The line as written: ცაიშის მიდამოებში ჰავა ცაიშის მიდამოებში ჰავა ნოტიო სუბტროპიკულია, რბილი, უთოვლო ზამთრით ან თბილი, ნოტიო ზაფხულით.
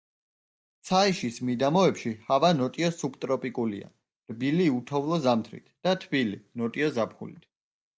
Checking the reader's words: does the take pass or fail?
fail